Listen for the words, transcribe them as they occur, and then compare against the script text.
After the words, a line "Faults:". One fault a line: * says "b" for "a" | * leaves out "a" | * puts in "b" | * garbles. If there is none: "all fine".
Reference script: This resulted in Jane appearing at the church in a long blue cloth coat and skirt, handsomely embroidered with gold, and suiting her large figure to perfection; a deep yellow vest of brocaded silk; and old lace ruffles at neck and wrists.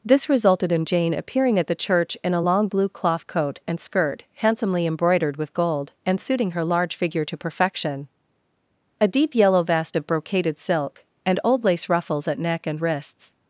This resulted in Jane appearing at the church in a long blue cloth coat and skirt, handsomely embroidered with gold, and suiting her large figure to perfection; a deep yellow vest of brocaded silk; and old lace ruffles at neck and wrists.
Faults:
all fine